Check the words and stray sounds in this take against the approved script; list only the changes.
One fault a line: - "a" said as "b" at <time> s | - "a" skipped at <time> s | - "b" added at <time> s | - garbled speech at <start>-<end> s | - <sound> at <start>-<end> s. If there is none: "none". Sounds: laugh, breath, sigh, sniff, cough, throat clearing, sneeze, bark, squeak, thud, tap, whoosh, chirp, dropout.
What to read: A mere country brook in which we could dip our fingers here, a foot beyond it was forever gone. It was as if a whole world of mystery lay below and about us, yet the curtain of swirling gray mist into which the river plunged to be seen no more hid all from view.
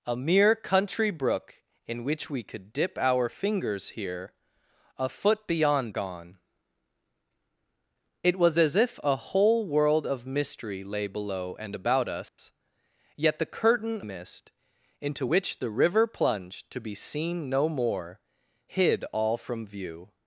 - "it was forever" skipped at 5.9 s
- dropout at 12.3-12.4 s
- "of swirling gray" skipped at 14.0 s